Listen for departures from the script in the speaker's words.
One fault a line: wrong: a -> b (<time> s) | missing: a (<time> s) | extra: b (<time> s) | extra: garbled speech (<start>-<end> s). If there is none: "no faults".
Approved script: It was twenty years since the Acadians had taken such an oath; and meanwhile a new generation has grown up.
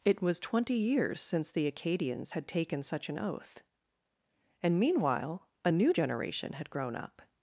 wrong: has -> had (6.5 s)